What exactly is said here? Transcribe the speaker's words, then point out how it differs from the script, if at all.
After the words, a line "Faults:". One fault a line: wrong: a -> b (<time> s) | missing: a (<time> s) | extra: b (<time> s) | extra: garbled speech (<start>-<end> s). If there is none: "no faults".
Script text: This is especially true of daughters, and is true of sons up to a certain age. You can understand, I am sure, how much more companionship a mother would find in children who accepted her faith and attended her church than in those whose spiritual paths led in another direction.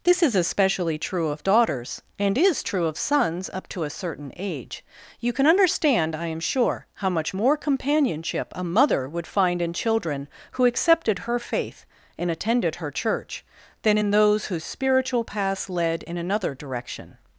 This is especially true of daughters, and is true of sons up to a certain age. You can understand, I am sure, how much more companionship a mother would find in children who accepted her faith and attended her church than in those whose spiritual paths led in another direction.
Faults:
no faults